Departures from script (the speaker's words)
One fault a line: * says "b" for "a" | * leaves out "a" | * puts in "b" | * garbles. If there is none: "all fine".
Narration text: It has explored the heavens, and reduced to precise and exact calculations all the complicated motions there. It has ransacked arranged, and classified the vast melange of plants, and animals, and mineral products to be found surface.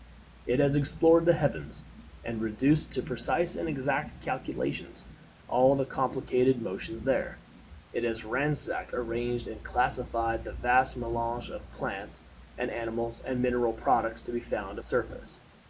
all fine